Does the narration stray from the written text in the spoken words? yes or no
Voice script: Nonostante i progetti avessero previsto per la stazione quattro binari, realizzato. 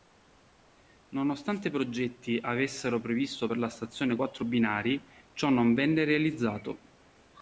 yes